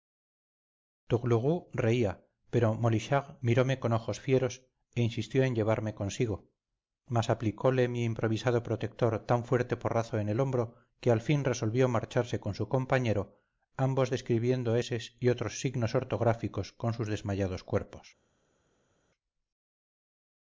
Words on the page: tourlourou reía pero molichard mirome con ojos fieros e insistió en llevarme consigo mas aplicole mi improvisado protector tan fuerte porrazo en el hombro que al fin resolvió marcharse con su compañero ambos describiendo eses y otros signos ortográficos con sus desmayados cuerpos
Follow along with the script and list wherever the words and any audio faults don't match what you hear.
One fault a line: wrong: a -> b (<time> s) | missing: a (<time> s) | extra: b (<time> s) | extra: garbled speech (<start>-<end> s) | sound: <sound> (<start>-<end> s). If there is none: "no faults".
no faults